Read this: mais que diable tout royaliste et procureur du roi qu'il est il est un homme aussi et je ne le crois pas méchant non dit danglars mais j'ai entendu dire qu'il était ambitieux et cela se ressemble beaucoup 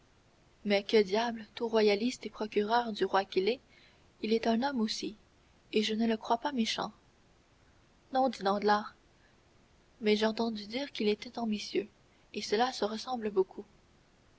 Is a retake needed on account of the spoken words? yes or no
no